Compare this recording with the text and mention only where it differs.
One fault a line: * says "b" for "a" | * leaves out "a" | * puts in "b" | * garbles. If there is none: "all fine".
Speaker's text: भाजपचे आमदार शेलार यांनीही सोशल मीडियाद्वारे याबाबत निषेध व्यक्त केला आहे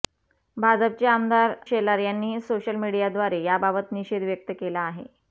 all fine